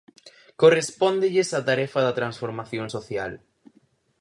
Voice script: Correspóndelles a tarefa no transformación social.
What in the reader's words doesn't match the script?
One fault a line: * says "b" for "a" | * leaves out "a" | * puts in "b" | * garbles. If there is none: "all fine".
* says "da" for "no"